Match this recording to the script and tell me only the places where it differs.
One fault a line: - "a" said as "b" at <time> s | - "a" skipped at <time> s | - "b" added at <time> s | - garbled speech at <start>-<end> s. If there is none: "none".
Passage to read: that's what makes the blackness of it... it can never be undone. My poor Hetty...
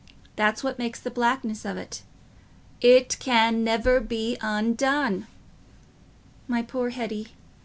none